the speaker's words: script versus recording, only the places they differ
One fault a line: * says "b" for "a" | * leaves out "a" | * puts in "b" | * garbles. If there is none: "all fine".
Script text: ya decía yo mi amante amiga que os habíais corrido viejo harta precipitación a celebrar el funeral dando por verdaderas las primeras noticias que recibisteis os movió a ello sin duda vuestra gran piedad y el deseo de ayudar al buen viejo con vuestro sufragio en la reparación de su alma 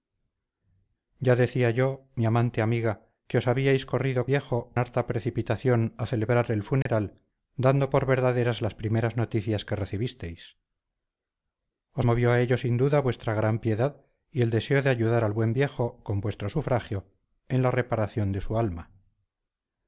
all fine